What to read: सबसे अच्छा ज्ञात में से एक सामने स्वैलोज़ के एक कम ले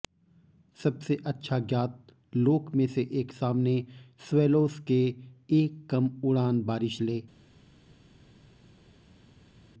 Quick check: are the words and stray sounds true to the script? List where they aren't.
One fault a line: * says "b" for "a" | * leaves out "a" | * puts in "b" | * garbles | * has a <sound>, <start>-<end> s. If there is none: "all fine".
* puts in "लोक"
* puts in "उड़ान बारिश"